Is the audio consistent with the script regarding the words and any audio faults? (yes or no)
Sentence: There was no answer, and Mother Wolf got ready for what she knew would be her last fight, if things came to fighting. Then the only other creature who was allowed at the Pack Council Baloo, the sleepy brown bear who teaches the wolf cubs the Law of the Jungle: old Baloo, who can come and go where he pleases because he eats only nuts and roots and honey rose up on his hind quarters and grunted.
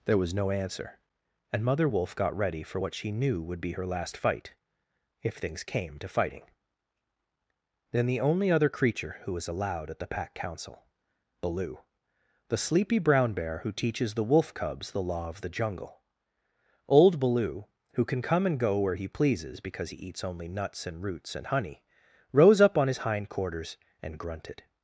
yes